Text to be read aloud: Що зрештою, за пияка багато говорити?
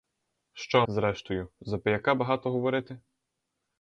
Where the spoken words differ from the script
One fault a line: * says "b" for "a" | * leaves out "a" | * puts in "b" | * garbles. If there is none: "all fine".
all fine